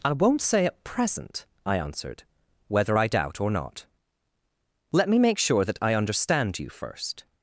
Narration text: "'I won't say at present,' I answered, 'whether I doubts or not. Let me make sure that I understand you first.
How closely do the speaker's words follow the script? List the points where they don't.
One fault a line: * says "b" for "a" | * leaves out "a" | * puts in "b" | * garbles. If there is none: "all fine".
* says "doubt" for "doubts"